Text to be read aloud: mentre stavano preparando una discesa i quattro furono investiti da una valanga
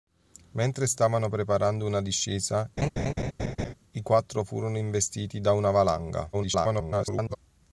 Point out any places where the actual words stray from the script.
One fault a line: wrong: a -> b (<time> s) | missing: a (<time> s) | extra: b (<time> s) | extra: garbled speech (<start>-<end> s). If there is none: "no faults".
extra: garbled speech (6.3-7.4 s)